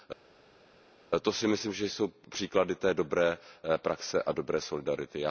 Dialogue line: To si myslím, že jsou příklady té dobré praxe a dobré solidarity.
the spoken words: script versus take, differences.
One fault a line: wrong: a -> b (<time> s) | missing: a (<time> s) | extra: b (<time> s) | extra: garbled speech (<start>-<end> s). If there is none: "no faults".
no faults